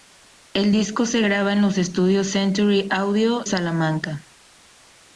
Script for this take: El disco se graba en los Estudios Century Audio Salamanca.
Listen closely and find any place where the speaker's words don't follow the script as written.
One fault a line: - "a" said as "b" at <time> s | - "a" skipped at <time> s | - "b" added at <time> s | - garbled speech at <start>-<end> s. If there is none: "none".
none